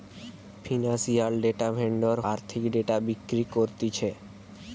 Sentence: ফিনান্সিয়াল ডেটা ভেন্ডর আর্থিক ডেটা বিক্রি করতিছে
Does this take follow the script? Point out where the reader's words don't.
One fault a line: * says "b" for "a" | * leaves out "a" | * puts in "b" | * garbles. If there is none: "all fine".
all fine